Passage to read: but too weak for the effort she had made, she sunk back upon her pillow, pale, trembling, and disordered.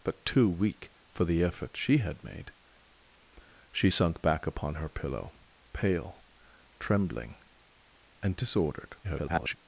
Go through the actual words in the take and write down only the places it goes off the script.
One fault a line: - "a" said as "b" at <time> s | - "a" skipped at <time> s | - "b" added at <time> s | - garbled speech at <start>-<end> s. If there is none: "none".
- garbled speech at 9.0-9.6 s